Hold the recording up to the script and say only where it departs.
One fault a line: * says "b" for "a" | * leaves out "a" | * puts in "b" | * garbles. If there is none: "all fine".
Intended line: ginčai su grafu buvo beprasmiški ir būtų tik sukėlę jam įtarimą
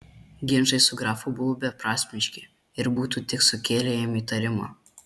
all fine